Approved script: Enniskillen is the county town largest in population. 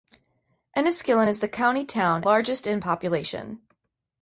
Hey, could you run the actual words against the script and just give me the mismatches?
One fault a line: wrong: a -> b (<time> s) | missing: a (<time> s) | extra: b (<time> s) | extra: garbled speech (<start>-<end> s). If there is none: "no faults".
no faults